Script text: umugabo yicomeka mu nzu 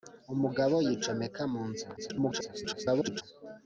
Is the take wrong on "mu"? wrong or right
right